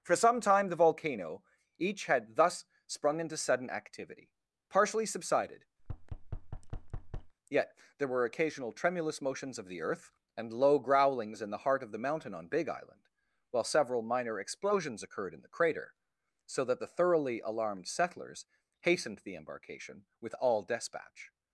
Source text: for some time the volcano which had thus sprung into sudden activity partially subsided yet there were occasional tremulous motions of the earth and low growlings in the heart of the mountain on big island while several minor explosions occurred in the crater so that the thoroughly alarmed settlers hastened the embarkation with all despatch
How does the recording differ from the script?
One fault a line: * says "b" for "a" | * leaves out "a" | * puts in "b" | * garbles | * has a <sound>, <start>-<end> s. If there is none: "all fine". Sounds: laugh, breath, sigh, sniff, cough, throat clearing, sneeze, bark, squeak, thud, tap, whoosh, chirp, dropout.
* says "each" for "which"
* has a thud, 5.8-7.3 s